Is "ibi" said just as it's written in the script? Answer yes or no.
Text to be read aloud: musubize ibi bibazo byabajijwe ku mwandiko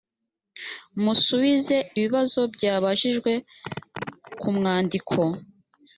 no